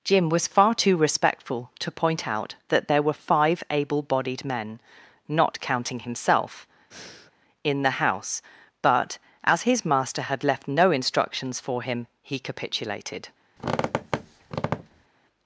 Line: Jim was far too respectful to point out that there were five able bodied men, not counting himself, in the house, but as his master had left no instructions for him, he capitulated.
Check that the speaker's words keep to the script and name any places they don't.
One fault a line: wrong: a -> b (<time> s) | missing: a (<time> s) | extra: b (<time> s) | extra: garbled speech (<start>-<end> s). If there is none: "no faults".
no faults